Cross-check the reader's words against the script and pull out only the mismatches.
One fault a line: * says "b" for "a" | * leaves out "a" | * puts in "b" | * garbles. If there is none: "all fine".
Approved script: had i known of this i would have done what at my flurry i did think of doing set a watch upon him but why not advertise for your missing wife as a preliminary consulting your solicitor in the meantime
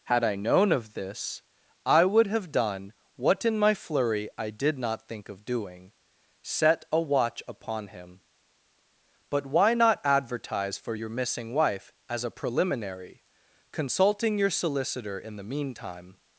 * says "in" for "at"
* puts in "not"